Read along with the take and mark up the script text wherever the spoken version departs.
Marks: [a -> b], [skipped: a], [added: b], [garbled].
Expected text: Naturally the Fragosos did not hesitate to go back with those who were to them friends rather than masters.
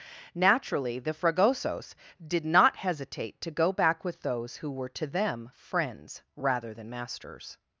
Naturally the Fragosos did not hesitate to go back with those who were to them friends rather than masters.